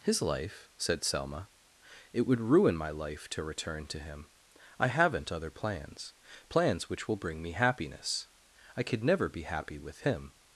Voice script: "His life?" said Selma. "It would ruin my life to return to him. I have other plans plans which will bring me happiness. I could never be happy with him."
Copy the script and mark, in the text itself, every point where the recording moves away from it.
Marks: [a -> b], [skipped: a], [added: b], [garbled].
"His life?" said Selma. "It would ruin my life to return to him. I [have -> haven't] other plans plans which will bring me happiness. I could never be happy with him."